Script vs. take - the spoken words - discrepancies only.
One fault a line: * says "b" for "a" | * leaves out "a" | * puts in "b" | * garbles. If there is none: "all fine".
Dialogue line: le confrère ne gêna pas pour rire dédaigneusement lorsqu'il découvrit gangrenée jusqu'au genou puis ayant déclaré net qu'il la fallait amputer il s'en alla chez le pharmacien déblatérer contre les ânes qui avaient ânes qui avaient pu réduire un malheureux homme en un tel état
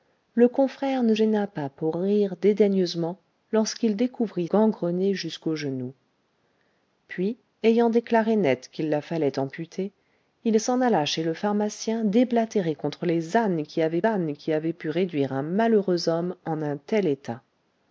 all fine